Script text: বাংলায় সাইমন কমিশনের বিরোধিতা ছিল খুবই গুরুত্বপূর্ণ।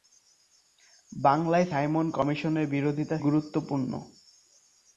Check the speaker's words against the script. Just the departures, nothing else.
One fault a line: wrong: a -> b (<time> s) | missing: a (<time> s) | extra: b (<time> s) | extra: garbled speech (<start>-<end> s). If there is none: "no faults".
missing: ছিল খুবই (3.2 s)